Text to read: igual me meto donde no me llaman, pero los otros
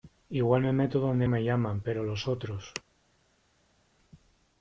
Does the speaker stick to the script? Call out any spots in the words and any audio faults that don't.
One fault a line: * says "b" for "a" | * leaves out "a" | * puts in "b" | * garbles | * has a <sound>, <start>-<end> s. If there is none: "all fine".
* leaves out "no"